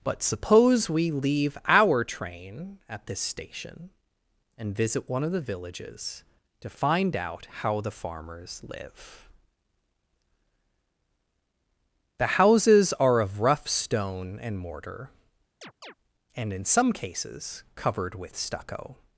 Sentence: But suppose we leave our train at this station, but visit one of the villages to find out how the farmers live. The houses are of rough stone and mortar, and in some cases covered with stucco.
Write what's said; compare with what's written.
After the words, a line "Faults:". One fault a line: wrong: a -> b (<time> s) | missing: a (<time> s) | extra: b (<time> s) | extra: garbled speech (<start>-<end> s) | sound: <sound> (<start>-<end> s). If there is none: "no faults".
But suppose we leave our train at this station, and visit one of the villages to find out how the farmers live. The houses are of rough stone and mortar, and in some cases covered with stucco.
Faults:
wrong: but -> and (4.6 s)
sound: chirp (15.6-15.9 s)